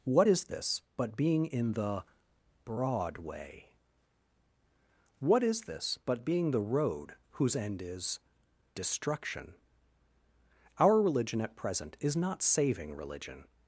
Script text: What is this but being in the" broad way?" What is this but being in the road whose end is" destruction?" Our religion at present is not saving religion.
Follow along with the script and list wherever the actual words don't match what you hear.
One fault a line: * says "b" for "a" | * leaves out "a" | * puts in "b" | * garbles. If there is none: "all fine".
* leaves out "in"